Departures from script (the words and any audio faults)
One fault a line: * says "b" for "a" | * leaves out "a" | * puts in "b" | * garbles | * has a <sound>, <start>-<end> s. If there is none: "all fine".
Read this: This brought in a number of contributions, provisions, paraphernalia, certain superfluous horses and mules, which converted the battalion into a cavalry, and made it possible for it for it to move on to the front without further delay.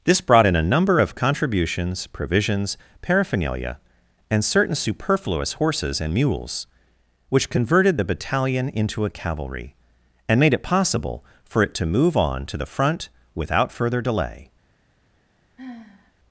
* puts in "and"
* leaves out "for it"
* has a sigh, 15.6-16.1 s